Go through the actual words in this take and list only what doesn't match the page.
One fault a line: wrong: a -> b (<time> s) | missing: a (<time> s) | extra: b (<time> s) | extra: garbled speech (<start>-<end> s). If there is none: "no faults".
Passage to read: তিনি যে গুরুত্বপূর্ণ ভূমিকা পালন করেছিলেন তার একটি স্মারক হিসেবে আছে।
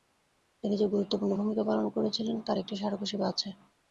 no faults